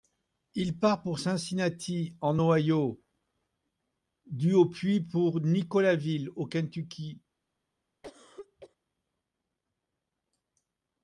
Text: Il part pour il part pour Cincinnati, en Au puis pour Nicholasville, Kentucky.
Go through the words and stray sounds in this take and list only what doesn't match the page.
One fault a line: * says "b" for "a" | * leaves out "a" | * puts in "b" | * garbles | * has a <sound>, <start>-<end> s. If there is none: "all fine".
* says "Cincinnati en Ohio du" for "il part pour Cincinnati en"
* puts in "au"
* has a cough, 8.0-8.8 s